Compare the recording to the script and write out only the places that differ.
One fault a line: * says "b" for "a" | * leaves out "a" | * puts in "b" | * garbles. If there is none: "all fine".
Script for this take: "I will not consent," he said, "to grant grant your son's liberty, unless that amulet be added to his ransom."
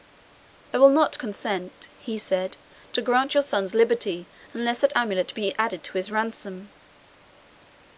* leaves out "grant"